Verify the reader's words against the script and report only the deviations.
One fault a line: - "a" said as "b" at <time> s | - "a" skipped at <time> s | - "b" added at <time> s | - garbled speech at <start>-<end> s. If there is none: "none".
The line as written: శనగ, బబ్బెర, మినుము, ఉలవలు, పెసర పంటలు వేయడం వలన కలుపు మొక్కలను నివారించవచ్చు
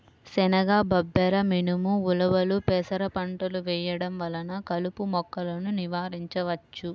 none